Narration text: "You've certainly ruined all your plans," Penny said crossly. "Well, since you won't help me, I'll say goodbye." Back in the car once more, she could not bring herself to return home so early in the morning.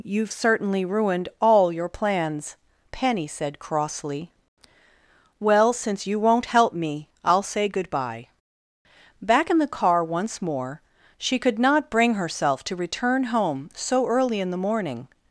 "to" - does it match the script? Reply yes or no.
yes